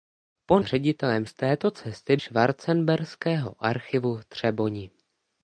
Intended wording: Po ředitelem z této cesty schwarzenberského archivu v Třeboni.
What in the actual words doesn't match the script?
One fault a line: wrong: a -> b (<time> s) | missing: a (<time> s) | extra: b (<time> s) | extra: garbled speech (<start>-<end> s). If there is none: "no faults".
no faults